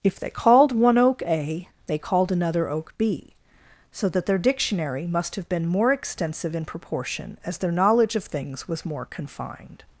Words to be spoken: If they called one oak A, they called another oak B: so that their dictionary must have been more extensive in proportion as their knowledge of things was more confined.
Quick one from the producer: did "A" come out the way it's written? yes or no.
yes